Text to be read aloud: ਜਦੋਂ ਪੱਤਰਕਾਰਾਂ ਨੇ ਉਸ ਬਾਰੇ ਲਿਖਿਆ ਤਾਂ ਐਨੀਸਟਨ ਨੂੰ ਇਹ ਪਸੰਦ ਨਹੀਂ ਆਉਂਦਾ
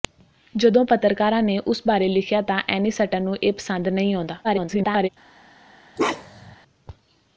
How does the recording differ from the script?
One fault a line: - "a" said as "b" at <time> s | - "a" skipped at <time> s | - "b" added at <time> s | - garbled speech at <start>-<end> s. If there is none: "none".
- garbled speech at 4.4-5.1 s